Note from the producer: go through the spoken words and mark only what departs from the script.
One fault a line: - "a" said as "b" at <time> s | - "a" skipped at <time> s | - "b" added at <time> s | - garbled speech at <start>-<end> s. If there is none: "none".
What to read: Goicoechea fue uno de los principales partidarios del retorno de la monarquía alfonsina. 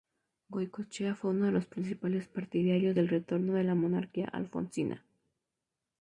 none